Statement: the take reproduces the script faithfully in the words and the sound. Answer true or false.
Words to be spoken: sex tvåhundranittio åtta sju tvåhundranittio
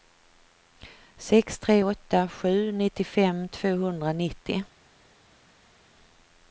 false